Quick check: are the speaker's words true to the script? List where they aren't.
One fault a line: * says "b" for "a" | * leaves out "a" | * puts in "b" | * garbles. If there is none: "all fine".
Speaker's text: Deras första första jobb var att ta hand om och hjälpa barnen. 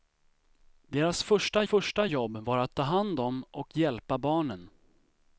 all fine